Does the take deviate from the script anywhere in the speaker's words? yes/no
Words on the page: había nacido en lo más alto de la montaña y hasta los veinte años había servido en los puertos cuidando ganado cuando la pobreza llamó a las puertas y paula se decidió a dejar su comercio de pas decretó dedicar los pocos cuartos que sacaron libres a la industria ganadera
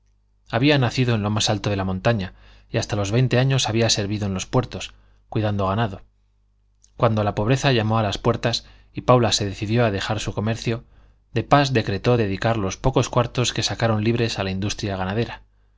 no